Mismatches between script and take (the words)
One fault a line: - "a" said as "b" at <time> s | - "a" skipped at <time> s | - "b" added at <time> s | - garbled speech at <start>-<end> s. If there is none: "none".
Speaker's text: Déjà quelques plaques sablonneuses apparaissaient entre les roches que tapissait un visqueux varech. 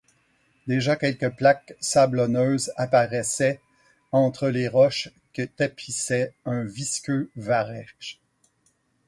none